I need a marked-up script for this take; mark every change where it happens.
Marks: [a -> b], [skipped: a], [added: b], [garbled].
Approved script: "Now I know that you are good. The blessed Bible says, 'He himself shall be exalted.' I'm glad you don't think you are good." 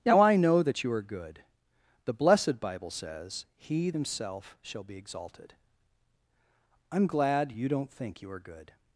"Now I know that you are good. The blessed Bible says, 'He himself shall be exalted.' I'm glad you don't think you are good."